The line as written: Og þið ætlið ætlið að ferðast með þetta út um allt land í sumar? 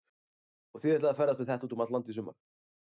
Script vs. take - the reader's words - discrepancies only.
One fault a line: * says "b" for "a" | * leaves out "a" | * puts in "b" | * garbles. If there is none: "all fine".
* leaves out "ætlið"